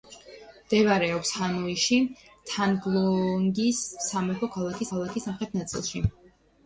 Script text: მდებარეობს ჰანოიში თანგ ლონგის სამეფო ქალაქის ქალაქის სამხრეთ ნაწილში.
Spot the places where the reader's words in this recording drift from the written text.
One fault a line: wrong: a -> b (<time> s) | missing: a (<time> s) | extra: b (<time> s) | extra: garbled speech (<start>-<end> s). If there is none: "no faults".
no faults